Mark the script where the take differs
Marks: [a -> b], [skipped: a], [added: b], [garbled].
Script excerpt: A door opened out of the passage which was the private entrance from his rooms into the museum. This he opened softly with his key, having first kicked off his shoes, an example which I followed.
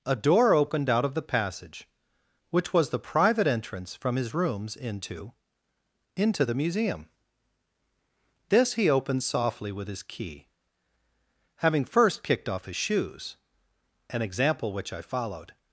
A door opened out of the passage which was the private entrance from his rooms into [added: into] the museum. This he opened softly with his key, having first kicked off his shoes, an example which I followed.